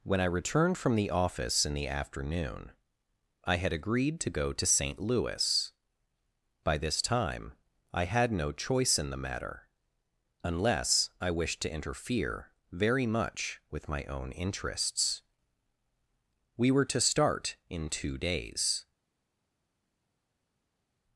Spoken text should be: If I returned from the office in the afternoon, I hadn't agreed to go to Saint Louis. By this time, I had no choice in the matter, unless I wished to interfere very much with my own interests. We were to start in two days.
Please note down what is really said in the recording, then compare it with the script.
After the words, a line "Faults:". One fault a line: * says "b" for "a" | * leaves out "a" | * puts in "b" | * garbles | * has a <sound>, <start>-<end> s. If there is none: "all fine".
When I returned from the office in the afternoon, I had agreed to go to Saint Louis. By this time, I had no choice in the matter, unless I wished to interfere very much with my own interests. We were to start in two days.
Faults:
* says "When" for "If"
* says "had" for "hadn't"